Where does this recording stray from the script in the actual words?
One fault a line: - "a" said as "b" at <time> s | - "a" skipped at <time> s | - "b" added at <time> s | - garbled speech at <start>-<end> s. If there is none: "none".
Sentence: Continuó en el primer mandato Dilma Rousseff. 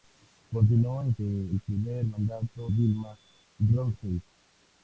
none